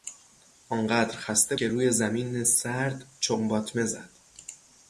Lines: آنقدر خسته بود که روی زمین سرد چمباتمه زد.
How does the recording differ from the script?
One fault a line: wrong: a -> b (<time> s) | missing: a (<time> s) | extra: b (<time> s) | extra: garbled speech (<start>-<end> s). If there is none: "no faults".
missing: بود (1.6 s)